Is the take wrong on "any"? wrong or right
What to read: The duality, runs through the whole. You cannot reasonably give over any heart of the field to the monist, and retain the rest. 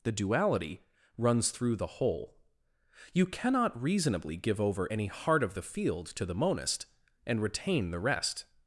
right